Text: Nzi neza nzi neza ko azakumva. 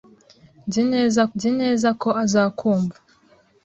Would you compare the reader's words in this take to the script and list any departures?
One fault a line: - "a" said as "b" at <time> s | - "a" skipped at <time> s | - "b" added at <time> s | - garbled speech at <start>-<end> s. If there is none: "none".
none